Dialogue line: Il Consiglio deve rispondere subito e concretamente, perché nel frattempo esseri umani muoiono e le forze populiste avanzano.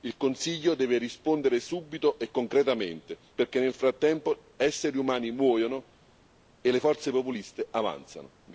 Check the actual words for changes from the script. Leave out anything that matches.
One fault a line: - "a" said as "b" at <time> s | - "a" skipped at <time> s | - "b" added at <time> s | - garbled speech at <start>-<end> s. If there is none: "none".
none